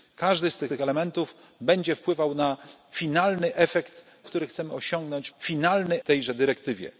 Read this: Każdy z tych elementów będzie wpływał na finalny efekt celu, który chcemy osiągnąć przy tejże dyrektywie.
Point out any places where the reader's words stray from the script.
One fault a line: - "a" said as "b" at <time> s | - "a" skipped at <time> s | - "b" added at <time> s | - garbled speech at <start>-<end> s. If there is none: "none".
- "tych" added at 0.7 s
- "celu" skipped at 4.0 s
- "przy" said as "finalny" at 5.4 s